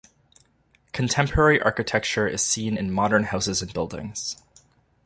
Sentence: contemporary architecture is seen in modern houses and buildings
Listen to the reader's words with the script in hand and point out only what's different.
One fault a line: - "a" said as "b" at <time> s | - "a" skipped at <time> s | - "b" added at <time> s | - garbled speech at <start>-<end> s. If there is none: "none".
none